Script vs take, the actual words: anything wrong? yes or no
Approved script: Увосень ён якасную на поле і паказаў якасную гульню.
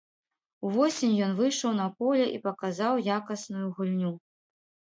yes